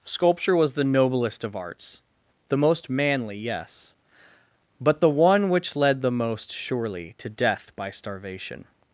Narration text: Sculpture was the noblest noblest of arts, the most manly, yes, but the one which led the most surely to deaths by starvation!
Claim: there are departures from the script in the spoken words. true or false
true